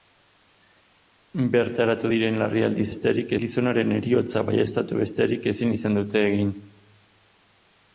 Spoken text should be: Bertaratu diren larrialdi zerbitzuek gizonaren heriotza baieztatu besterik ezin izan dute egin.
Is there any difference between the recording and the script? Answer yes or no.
yes